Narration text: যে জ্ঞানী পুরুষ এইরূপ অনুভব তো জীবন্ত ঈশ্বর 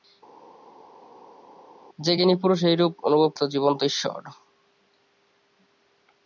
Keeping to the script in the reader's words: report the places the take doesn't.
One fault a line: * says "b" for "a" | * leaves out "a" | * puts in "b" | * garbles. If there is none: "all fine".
all fine